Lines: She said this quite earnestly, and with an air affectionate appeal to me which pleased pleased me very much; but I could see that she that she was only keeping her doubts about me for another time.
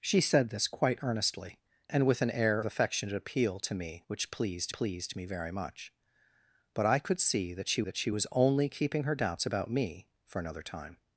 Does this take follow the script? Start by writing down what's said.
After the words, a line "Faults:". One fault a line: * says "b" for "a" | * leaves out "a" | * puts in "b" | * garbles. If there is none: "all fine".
She said this quite earnestly, and with an air affectionate appeal to me which pleased pleased me very much; but I could see that she that she was only keeping her doubts about me for another time.
Faults:
all fine